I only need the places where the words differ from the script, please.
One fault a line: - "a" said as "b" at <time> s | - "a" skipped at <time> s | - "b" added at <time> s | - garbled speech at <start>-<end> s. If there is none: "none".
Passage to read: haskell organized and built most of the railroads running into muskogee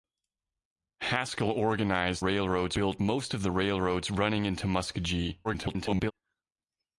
- "and" said as "railroads" at 2.2 s
- garbled speech at 5.4-6.1 s